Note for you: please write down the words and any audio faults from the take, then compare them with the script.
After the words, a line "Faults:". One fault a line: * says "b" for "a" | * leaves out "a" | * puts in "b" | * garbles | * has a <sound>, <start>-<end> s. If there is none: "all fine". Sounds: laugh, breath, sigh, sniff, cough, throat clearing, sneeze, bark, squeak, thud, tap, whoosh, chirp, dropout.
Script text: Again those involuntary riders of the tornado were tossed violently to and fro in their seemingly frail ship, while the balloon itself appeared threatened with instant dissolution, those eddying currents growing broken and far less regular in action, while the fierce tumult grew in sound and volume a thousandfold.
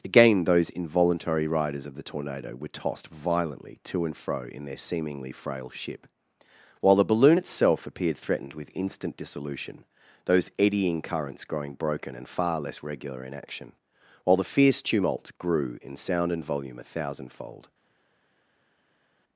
Again those involuntary riders of the tornado were tossed violently to and fro in their seemingly frail ship, while the balloon itself appeared threatened with instant dissolution, those eddying currents growing broken and far less regular in action, while the fierce tumult grew in sound and volume a thousandfold.
Faults:
all fine